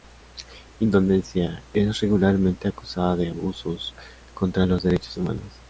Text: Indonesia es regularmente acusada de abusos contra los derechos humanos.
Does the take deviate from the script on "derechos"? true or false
false